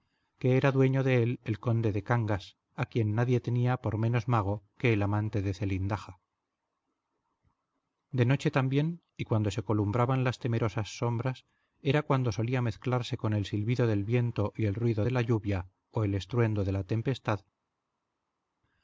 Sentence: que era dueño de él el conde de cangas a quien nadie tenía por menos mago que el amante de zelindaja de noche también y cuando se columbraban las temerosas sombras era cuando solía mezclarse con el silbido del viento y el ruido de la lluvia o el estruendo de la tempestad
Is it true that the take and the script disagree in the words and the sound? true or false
false